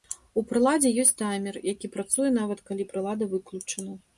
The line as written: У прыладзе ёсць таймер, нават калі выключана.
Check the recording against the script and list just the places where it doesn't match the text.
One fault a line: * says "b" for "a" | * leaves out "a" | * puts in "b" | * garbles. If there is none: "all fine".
* puts in "які працуе"
* puts in "прылада"